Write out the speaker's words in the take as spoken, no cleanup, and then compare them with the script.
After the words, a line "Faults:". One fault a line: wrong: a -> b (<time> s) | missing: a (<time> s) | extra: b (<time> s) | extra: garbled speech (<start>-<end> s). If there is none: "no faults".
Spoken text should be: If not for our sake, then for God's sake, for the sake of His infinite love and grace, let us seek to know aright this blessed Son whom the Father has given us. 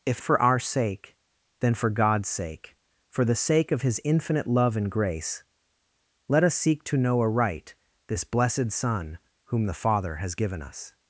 If for our sake, then for God's sake, for the sake of His infinite love and grace, let us seek to know aright this blessed Son whom the Father has given us.
Faults:
missing: not (0.2 s)